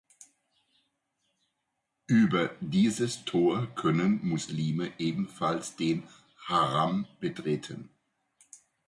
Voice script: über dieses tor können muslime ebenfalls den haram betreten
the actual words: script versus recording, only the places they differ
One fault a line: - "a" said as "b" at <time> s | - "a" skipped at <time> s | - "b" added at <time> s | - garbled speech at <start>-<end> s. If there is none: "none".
none